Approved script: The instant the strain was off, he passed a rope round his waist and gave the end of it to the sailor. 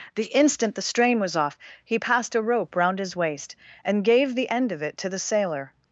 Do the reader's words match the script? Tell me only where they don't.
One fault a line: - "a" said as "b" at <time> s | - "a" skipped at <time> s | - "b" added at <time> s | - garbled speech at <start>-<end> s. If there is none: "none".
none